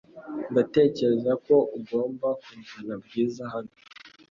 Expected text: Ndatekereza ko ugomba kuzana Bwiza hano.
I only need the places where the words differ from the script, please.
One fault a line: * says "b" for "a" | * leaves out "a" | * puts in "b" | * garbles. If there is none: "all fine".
all fine